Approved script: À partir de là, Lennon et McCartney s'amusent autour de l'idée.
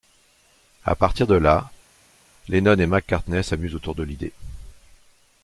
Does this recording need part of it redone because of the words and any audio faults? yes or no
no